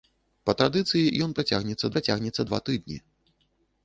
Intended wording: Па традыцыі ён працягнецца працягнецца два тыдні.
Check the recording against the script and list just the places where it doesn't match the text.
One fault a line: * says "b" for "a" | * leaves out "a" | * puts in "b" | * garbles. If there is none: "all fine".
all fine